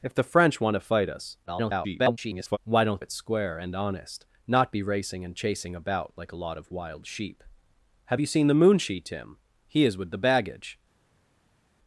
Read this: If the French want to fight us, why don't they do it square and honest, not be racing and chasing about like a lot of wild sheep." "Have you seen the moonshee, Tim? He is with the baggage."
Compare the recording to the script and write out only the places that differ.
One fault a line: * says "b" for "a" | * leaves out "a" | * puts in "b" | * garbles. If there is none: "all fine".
* garbles
* leaves out "they do"